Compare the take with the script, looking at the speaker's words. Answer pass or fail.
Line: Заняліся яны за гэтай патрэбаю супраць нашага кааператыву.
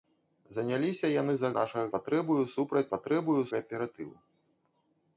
fail